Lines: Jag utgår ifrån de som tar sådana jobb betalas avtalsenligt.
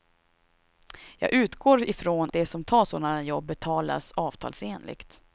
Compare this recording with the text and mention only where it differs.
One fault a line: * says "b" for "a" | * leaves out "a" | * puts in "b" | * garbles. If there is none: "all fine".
all fine